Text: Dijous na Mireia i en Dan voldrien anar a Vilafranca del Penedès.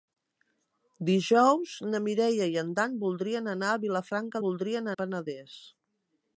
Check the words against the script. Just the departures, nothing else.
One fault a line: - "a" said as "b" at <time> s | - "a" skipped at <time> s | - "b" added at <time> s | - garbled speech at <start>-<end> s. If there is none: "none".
- "del" said as "voldrien" at 4.4 s